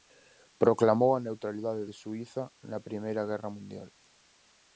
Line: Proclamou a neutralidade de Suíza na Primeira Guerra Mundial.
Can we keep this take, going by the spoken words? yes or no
yes